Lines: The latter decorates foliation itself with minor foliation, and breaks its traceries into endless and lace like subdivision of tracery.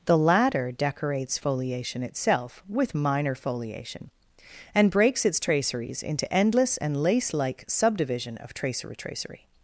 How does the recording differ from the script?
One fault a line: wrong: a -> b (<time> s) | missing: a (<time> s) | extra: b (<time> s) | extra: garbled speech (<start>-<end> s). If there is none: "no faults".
extra: tracery (9.0 s)